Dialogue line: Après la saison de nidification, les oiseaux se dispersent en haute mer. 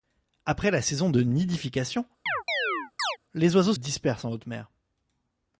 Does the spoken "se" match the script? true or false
false